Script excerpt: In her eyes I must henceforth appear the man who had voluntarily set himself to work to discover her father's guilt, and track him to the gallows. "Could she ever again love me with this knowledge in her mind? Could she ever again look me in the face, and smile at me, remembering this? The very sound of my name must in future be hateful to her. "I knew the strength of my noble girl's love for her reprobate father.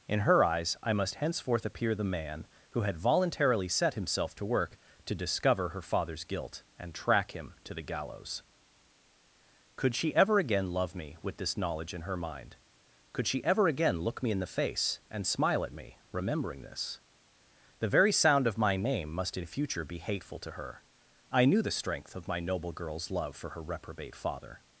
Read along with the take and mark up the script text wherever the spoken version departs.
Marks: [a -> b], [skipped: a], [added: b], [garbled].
In her eyes I must henceforth appear the man who had voluntarily set himself to work to discover her father's guilt, and track him to the gallows. "Could she ever again love me with this knowledge in her mind? Could she ever again look me in the face, and smile at me, remembering this? The very sound of my name must in future be hateful to her. "I knew the strength of my noble girl's love for her reprobate father.